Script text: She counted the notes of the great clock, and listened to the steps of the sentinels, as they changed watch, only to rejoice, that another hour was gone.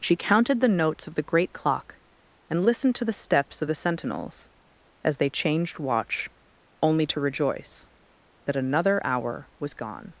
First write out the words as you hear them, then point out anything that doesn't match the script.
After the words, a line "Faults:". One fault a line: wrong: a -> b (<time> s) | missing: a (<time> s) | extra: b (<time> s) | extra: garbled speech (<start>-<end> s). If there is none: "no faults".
She counted the notes of the great clock, and listened to the steps of the sentinels, as they changed watch, only to rejoice, that another hour was gone.
Faults:
no faults